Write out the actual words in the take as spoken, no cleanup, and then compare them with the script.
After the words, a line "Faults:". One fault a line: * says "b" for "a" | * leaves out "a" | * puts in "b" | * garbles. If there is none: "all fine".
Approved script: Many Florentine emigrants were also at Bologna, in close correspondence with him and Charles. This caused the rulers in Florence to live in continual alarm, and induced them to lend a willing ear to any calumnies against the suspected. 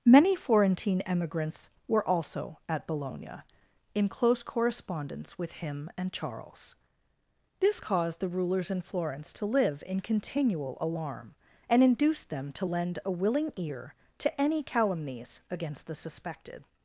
Many Florentine emigrants were also at Bologna, in close correspondence with him and Charles. This caused the rulers in Florence to live in continual alarm, and induced them to lend a willing ear to any calumnies against the suspected.
Faults:
all fine